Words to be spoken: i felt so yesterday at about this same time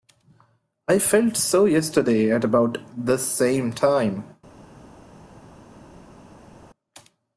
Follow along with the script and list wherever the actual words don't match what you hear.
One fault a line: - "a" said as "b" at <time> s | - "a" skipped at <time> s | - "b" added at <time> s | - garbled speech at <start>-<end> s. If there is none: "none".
none